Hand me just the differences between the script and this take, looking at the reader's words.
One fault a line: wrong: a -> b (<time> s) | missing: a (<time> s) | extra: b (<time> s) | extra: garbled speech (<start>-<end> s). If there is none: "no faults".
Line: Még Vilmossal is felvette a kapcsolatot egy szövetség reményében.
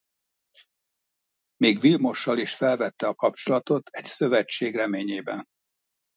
no faults